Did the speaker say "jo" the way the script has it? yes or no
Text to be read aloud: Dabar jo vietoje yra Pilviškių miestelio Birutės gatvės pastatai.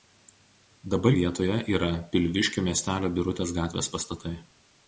no